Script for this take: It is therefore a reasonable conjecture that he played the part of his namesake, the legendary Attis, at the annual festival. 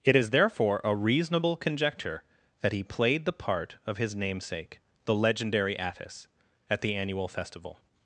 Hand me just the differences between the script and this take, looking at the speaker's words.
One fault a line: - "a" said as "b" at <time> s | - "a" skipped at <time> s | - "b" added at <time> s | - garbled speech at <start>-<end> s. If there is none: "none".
none